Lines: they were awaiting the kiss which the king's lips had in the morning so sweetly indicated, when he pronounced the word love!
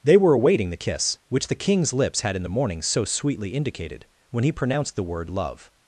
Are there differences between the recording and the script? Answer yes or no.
no